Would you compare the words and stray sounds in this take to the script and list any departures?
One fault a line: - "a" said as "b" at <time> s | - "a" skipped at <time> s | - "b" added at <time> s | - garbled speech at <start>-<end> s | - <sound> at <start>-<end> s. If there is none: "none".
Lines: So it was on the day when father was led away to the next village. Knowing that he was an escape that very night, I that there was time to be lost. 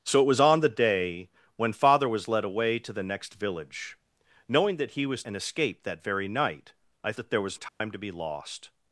- dropout at 7.7-7.8 s